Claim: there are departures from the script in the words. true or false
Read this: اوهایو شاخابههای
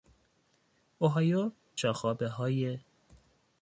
false